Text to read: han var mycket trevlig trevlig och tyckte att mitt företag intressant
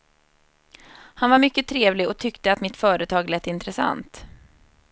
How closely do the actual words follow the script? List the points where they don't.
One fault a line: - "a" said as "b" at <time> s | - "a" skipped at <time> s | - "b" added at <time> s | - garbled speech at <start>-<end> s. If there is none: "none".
- "trevlig" skipped at 2.1 s
- "lät" added at 3.3 s